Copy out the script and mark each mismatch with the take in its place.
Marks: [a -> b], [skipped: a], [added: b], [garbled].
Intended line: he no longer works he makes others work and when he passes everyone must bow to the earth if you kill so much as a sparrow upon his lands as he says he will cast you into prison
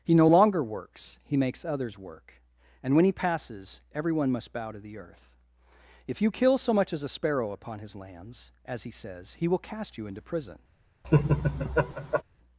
he no longer works he makes others work and when he passes everyone must bow to the earth if you kill so much as a sparrow upon his lands as he says he will cast you into prison